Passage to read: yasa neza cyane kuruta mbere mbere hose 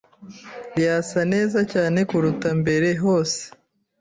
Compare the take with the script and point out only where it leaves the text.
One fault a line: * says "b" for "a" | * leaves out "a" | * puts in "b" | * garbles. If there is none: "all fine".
* leaves out "mbere"